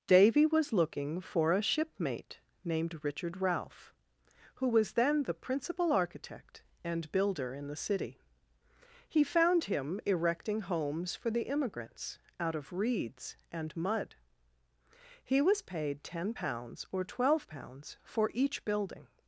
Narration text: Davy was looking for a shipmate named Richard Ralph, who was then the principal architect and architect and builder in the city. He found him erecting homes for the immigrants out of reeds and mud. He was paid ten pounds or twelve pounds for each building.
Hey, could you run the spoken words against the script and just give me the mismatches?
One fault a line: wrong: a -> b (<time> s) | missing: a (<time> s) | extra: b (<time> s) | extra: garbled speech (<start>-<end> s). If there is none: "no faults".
missing: architect and (7.1 s)